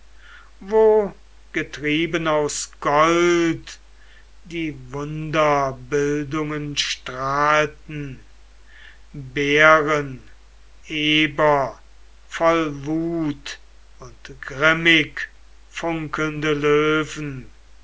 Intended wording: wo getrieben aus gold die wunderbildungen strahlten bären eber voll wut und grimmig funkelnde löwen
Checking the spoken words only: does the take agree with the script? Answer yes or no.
yes